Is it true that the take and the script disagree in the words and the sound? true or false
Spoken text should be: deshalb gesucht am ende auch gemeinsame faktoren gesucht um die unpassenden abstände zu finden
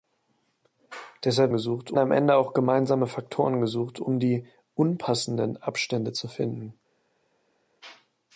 false